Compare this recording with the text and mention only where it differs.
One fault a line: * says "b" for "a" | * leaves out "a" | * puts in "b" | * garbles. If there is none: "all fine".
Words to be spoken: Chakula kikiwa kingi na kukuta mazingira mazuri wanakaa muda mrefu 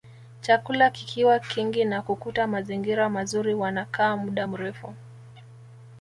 all fine